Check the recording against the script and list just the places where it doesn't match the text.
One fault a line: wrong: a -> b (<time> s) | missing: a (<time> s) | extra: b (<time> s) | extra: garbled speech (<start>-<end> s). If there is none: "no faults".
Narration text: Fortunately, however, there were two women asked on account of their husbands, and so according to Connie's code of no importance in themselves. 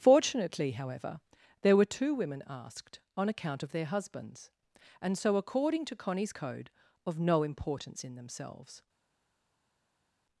no faults